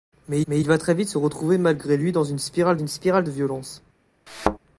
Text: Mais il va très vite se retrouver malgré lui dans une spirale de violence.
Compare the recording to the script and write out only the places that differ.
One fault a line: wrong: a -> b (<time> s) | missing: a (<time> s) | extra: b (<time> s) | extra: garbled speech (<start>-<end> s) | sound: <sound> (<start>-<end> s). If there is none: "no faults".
extra: mais (0.5 s)
extra: une spirale (2.7 s)
sound: thud (4.3-4.6 s)